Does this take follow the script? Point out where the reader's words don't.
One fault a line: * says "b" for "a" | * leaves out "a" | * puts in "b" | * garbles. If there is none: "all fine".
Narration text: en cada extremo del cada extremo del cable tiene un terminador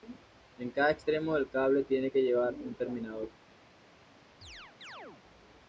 * says "cable tiene que llevar" for "cada extremo del cable tiene"